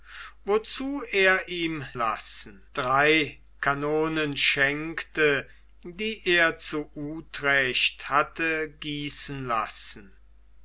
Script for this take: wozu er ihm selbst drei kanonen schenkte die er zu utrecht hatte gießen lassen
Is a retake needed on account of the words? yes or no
yes